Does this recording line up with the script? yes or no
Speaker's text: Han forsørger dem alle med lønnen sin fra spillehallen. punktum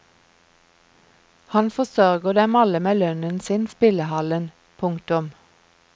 no